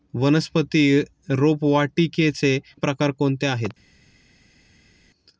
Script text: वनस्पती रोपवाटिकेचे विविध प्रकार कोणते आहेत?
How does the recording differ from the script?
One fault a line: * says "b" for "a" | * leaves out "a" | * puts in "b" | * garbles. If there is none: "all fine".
* leaves out "विविध"